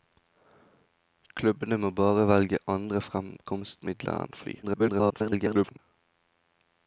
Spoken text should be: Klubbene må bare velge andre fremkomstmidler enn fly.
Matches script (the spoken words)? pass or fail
fail